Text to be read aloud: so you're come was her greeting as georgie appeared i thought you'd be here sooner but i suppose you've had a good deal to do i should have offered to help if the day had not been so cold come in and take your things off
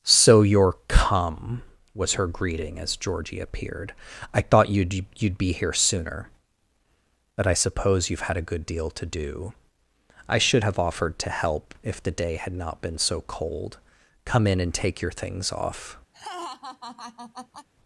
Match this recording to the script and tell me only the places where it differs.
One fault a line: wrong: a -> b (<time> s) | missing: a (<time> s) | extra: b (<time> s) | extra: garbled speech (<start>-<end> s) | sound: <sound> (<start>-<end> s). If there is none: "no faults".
extra: you'd (5.2 s)
sound: laugh (16.1-17.7 s)